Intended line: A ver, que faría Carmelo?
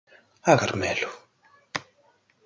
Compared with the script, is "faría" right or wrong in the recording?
wrong